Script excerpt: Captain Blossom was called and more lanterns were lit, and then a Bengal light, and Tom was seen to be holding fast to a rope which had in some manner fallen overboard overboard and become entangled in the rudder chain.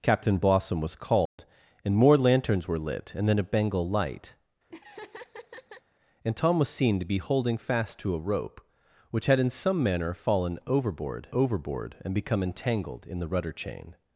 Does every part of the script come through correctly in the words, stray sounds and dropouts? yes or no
no